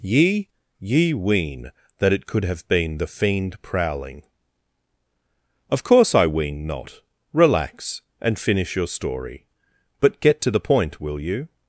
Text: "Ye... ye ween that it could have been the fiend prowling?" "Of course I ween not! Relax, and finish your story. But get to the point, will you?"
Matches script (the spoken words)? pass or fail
pass